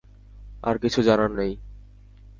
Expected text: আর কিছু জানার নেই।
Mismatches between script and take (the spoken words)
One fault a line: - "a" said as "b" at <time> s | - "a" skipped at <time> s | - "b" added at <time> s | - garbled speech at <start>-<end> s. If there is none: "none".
none